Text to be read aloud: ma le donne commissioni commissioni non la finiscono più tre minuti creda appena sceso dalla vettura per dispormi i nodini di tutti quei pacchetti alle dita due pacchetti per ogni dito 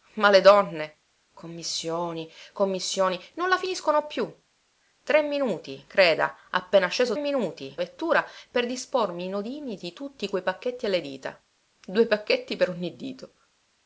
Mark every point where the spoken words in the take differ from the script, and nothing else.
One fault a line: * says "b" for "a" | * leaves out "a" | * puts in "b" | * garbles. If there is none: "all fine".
* says "minuti" for "dalla"